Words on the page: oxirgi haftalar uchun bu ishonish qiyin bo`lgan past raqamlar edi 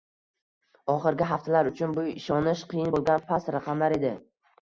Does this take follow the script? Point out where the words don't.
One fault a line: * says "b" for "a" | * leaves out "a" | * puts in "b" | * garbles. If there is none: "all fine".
all fine